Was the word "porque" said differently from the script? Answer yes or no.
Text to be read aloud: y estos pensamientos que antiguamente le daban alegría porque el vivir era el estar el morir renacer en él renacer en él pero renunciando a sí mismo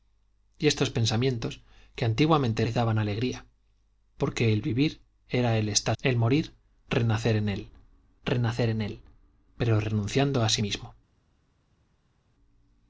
no